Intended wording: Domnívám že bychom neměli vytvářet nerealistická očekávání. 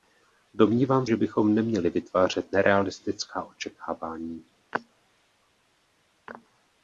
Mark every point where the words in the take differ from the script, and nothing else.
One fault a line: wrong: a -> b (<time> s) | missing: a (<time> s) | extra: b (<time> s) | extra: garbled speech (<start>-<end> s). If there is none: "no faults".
no faults